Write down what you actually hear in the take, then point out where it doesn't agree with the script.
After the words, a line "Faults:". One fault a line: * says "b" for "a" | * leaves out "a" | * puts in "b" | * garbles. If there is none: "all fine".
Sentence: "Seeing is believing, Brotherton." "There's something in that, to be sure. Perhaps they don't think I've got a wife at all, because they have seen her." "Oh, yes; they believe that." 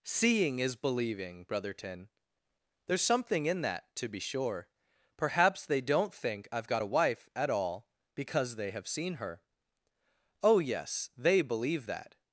"Seeing is believing, Brotherton." "There's something in that, to be sure. Perhaps they don't think I've got a wife at all, because they have seen her." "Oh, yes; they believe that."
Faults:
all fine